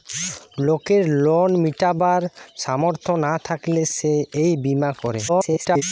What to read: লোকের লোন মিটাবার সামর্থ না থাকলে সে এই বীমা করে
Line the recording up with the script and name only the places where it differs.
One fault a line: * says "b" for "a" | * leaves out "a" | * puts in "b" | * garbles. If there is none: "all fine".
* garbles